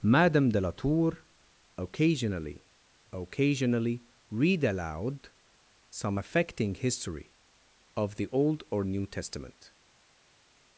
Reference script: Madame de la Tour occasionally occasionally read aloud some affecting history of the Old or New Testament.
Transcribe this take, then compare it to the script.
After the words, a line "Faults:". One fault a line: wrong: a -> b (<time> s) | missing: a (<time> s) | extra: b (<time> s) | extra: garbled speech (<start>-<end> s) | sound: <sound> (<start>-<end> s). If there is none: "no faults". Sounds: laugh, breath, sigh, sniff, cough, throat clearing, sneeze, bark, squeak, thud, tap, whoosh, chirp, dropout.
Madame de la Tour occasionally occasionally read aloud some affecting history of the Old or New Testament.
Faults:
no faults